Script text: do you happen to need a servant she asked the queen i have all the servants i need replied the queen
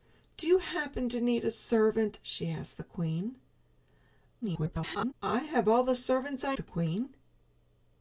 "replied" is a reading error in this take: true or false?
true